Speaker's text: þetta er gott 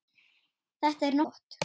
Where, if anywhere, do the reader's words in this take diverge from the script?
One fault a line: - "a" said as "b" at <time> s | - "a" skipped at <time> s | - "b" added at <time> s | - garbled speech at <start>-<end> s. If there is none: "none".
none